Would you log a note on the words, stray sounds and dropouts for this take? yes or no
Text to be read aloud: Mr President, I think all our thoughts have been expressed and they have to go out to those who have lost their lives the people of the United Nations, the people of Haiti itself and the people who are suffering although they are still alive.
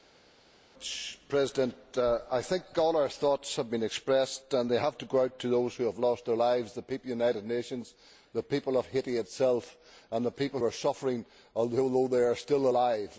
yes